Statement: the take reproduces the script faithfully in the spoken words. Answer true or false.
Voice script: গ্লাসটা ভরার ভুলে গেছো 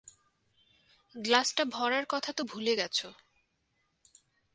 false